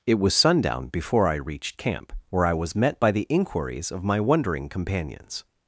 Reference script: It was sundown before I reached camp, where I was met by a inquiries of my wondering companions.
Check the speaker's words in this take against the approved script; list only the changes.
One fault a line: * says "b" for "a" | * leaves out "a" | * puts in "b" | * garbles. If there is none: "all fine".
* says "the" for "a"